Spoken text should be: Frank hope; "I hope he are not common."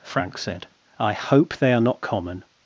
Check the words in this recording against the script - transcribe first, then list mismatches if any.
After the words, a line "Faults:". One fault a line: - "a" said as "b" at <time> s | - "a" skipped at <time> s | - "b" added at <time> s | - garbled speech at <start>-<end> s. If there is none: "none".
Frank said; "I hope they are not common."
Faults:
- "hope" said as "said" at 0.4 s
- "he" said as "they" at 1.6 s